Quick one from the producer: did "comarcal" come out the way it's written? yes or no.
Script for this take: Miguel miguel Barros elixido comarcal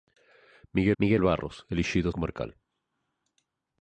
yes